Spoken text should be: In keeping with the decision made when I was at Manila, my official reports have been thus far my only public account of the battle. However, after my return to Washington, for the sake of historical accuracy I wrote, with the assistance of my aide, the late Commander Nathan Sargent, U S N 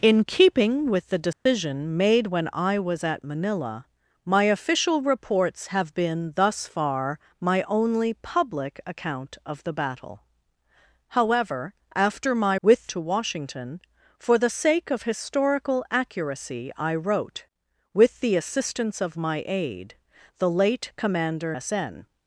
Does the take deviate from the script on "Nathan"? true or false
true